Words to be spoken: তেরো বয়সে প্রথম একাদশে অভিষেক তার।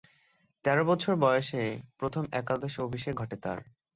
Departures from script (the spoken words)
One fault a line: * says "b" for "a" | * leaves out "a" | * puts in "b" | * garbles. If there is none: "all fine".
* puts in "বছর"
* puts in "ঘটে"